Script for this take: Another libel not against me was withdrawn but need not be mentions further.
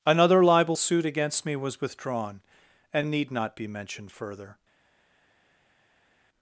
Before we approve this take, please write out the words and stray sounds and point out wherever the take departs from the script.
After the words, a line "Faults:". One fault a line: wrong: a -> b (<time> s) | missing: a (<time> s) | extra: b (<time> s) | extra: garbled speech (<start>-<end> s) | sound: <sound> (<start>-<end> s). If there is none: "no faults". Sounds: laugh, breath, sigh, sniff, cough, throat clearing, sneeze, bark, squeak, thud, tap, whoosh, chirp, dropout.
Another libel suit against me was withdrawn and need not be mentioned further.
Faults:
wrong: not -> suit (0.8 s)
wrong: but -> and (2.9 s)
wrong: mentions -> mentioned (3.7 s)